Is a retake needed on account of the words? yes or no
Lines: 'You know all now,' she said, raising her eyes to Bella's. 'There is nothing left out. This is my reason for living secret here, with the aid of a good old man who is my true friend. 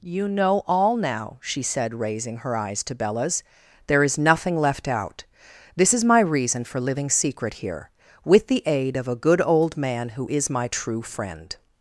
no